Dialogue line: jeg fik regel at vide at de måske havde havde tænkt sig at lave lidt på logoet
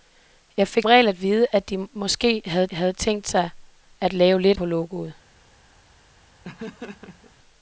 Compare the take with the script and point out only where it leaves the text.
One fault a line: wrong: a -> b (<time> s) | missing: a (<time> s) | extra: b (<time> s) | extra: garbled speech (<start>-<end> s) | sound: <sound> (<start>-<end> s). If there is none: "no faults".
sound: laugh (6.4-7.3 s)